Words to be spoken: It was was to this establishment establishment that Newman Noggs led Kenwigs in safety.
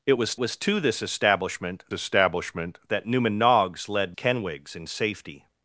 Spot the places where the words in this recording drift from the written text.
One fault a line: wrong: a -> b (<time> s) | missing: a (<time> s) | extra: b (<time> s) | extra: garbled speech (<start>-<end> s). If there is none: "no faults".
no faults